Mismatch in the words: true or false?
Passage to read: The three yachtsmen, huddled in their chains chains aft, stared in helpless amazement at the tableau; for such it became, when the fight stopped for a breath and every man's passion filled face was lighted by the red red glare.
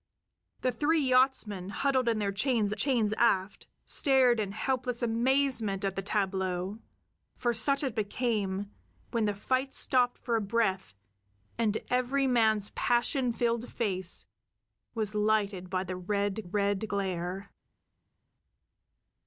false